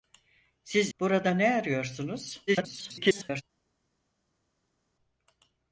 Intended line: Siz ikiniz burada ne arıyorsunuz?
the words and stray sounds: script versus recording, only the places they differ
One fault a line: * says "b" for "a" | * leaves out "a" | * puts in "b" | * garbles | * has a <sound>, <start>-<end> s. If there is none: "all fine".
* leaves out "ikiniz"
* garbles